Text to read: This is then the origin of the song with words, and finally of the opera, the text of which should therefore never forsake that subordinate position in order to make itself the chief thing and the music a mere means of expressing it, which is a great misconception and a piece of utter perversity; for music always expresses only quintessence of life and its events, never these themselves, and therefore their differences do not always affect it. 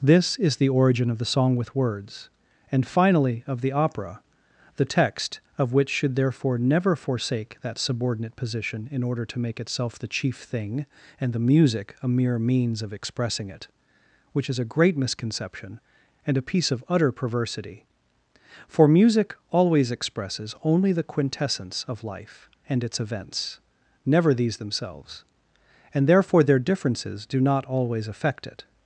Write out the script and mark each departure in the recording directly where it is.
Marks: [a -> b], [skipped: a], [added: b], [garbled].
This is [skipped: then] the origin of the song with words, and finally of the opera, the text of which should therefore never forsake that subordinate position in order to make itself the chief thing and the music a mere means of expressing it, which is a great misconception and a piece of utter perversity; for music always expresses only [added: the] quintessence of life and its events, never these themselves, and therefore their differences do not always affect it.